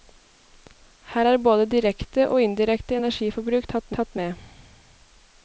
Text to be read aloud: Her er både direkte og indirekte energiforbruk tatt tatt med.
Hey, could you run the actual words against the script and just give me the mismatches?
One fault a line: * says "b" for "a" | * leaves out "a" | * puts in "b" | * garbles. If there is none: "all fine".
all fine